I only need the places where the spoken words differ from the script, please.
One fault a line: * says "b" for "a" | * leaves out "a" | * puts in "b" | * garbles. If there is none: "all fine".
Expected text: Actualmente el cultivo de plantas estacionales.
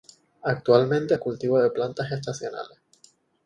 all fine